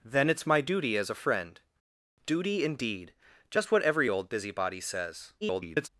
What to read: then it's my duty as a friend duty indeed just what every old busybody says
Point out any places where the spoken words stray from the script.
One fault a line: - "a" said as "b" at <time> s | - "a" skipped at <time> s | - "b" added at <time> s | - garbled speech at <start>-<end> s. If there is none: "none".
- garbled speech at 5.4-5.9 s